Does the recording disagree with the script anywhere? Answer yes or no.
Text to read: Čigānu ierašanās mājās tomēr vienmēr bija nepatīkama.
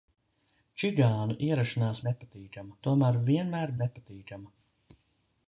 yes